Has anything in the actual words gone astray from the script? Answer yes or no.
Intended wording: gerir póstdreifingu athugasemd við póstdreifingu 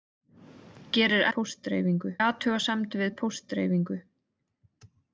no